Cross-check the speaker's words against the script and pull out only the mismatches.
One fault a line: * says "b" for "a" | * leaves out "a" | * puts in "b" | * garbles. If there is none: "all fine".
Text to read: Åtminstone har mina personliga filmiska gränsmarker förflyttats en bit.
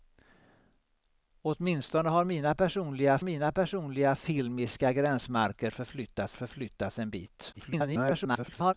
* puts in "mina personliga"
* puts in "förflyttats"
* garbles